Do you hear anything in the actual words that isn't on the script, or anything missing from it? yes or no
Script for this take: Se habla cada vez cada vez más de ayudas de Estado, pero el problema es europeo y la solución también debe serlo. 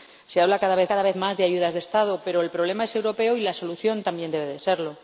no